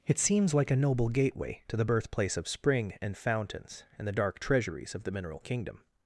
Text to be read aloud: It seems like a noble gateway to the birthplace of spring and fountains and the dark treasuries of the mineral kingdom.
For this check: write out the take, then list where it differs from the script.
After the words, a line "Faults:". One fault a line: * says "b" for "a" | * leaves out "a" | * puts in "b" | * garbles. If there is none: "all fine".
It seems like a noble gateway to the birthplace of spring and fountains and the dark treasuries of the mineral kingdom.
Faults:
all fine